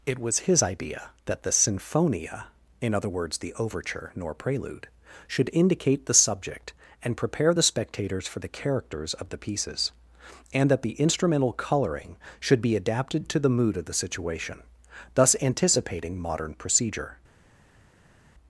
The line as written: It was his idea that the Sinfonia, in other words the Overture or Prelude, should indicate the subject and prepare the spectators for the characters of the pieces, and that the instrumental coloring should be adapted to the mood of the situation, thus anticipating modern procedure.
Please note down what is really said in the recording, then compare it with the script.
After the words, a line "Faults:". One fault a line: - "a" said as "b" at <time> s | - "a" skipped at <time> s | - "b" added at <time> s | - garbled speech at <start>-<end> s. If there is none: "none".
It was his idea that the Sinfonia, in other words the Overture nor Prelude, should indicate the subject and prepare the spectators for the characters of the pieces, and that the instrumental coloring should be adapted to the mood of the situation, thus anticipating modern procedure.
Faults:
- "or" said as "nor" at 4.2 s